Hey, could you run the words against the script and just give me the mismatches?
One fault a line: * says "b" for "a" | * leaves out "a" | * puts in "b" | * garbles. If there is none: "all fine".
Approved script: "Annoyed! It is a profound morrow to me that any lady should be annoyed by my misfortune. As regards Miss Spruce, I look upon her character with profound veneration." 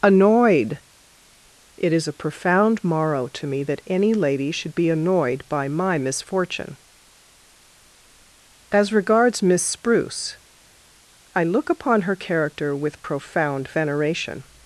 all fine